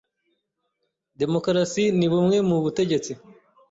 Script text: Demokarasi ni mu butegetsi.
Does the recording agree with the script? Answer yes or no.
no